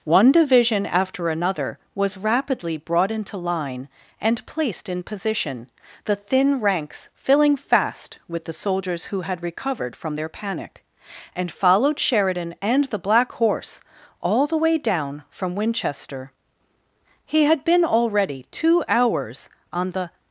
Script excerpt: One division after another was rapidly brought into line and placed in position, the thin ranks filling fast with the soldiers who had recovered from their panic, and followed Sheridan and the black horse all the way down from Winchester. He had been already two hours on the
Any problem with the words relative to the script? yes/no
no